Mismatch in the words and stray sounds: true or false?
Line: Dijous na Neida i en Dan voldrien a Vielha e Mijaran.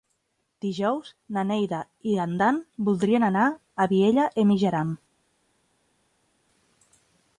true